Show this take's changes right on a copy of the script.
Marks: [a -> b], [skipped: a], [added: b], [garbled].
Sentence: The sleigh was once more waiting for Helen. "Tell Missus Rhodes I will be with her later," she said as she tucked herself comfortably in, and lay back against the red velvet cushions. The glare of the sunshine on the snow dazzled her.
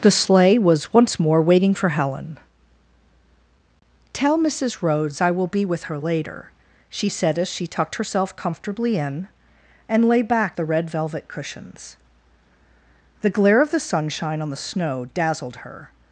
The sleigh was once more waiting for Helen. "Tell Missus Rhodes I will be with her later," she said as she tucked herself comfortably in, and lay back [skipped: against] the red velvet cushions. The glare of the sunshine on the snow dazzled her.